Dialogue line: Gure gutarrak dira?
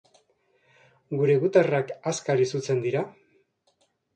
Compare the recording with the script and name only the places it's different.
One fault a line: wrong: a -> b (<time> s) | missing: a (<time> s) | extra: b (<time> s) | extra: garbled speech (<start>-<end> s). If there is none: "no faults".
extra: azkar izutzen (2.1 s)